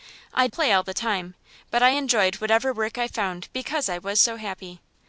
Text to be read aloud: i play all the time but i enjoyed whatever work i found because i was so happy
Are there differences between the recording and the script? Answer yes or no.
no